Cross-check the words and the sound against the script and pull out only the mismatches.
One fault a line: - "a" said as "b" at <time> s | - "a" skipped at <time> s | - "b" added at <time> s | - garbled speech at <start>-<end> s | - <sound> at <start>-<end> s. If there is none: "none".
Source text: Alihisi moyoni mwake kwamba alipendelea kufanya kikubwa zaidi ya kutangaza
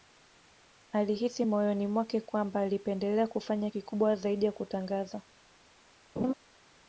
- laugh at 6.2-6.3 s